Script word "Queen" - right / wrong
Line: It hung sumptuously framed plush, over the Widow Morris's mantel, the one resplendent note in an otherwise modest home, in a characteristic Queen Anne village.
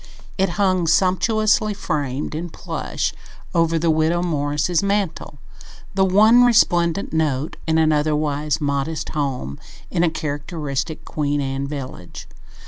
right